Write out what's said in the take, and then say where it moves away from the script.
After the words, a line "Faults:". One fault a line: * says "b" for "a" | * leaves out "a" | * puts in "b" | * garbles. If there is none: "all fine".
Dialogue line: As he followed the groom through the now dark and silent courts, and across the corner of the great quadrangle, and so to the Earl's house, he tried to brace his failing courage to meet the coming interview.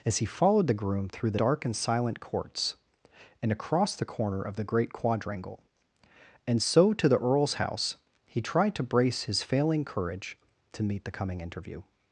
As he followed the groom through the dark and silent courts, and across the corner of the great quadrangle, and so to the Earl's house, he tried to brace his failing courage to meet the coming interview.
Faults:
* leaves out "now"